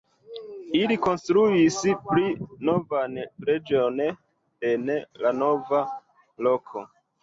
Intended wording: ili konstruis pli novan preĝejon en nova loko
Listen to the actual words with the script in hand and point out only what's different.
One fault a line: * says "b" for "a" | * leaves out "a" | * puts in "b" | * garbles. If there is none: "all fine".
* puts in "la"